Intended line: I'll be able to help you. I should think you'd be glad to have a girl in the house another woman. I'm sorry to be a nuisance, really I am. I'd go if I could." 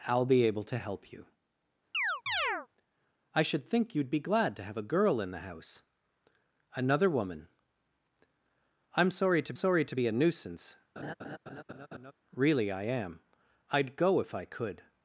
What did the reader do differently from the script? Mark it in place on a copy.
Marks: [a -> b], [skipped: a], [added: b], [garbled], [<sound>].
I'll be able to help you. [chirp] I should think you'd be glad to have a girl in the house another woman. I'm sorry to [added: sorry to] be a nuisance, [laugh] really I am. I'd go if I could."